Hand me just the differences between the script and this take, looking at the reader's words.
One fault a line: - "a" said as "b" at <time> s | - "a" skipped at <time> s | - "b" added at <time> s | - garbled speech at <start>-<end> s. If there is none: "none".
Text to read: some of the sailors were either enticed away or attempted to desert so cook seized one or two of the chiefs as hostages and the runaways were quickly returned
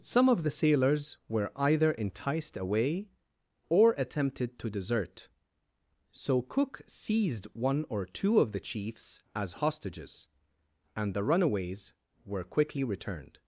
none